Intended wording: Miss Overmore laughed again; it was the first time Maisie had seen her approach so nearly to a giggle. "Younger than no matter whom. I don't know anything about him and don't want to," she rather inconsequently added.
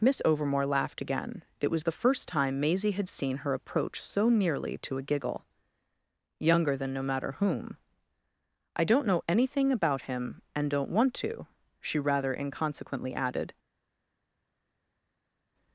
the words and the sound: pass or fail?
pass